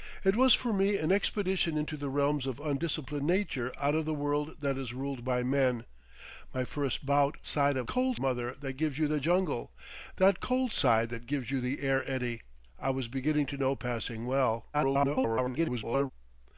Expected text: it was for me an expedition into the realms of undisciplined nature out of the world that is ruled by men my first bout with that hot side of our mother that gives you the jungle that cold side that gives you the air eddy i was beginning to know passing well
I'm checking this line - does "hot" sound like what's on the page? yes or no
no